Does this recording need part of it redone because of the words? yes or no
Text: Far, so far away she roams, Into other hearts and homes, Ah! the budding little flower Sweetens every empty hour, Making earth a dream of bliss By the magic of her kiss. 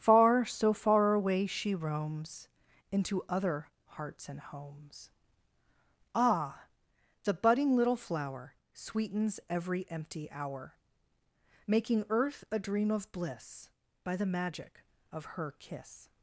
no